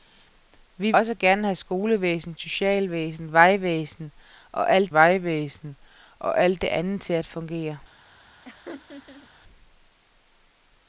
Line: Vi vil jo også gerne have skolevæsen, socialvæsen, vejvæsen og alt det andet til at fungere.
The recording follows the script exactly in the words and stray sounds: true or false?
false